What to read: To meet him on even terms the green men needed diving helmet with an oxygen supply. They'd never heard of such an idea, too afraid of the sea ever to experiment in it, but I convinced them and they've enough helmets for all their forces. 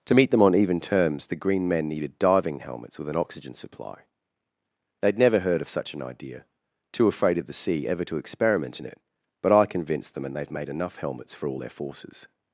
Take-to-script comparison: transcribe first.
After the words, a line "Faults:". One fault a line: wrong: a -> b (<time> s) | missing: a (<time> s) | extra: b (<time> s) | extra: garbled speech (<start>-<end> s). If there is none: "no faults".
To meet them on even terms the green men needed diving helmets with an oxygen supply. They'd never heard of such an idea, too afraid of the sea ever to experiment in it, but I convinced them and they've made enough helmets for all their forces.
Faults:
wrong: him -> them (0.3 s)
wrong: helmet -> helmets (2.6 s)
extra: made (10.5 s)